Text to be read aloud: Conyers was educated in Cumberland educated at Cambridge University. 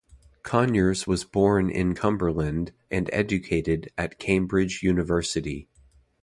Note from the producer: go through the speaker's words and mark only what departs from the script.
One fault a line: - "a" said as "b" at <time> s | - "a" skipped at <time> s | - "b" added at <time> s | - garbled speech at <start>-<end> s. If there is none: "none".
- "educated" said as "born" at 1.3 s
- "and" added at 2.9 s